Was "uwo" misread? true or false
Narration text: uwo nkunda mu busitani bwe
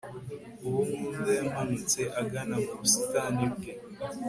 false